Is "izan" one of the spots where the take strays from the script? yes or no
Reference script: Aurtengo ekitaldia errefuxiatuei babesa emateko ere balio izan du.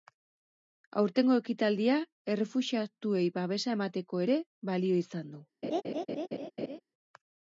no